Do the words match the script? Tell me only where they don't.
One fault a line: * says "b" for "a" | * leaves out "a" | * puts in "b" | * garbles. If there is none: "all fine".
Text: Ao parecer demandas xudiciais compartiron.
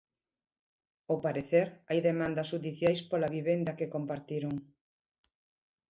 * puts in "hai"
* puts in "pola vivenda que"